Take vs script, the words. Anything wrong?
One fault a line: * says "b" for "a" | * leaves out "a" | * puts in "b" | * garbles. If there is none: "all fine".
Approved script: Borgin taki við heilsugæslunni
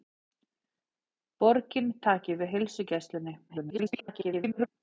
* garbles